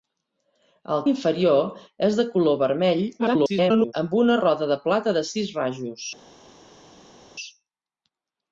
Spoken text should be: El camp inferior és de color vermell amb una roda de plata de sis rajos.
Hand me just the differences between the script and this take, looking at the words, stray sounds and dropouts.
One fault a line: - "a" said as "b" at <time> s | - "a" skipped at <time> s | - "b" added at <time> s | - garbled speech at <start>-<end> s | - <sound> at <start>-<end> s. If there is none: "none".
- "camp" skipped at 1.0 s
- garbled speech at 3.2-3.9 s